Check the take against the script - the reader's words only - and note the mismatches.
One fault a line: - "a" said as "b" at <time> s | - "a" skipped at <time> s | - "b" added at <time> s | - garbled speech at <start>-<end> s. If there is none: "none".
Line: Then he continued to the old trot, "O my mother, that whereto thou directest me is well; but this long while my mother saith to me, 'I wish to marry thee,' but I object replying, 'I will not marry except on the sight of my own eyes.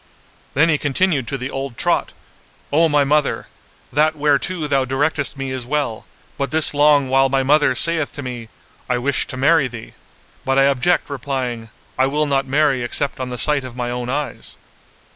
none